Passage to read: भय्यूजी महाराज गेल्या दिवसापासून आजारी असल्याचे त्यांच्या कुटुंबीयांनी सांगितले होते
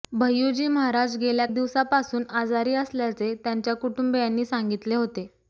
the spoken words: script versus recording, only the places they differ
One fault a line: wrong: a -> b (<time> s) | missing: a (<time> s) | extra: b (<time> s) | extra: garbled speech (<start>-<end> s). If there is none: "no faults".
no faults